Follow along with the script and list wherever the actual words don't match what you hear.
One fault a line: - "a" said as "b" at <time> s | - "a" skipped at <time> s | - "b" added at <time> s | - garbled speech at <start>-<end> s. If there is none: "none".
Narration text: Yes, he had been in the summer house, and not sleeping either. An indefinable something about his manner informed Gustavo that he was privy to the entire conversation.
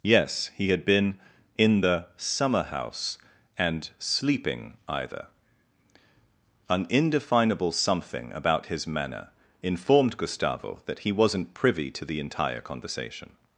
- "not" skipped at 3.9 s
- "was" said as "wasn't" at 11.1 s